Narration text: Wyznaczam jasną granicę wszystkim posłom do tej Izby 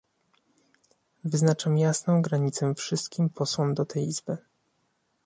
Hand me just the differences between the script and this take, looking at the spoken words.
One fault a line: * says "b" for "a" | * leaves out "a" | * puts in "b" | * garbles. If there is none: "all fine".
all fine